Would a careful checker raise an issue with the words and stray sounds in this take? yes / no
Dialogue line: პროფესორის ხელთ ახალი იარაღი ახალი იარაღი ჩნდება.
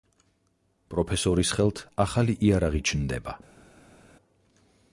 yes